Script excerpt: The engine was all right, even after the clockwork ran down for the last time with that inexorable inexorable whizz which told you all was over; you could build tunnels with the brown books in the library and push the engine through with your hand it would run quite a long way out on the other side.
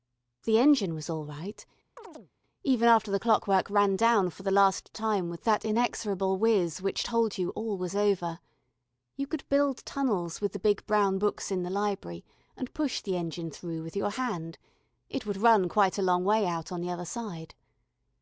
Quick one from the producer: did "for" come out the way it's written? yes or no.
yes